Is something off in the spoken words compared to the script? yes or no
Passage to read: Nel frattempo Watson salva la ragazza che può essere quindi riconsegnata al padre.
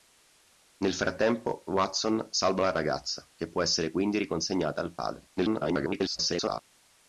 yes